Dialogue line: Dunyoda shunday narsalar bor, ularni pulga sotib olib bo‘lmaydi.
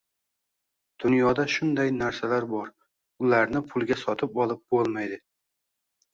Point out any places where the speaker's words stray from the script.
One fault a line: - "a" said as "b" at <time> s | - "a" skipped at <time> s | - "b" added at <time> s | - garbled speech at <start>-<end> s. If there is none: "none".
none